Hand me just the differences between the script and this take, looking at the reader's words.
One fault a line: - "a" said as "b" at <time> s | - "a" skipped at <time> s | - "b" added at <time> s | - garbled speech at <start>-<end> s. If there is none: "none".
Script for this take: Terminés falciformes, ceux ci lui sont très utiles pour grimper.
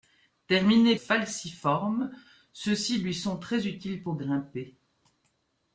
none